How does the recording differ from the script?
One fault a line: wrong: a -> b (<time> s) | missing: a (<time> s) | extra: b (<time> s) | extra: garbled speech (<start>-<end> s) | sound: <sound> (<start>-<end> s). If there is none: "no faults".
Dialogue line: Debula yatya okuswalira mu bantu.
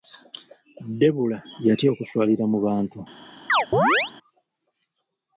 sound: chirp (3.5-4.1 s)